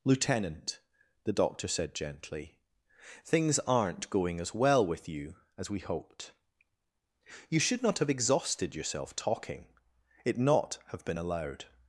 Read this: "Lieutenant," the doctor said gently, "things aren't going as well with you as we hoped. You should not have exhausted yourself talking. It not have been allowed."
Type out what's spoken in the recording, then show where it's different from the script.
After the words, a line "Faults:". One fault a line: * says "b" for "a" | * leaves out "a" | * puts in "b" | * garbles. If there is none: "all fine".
"Lieutenant," the doctor said gently, "things aren't going as well with you as we hoped. You should not have exhausted yourself talking. It not have been allowed."
Faults:
all fine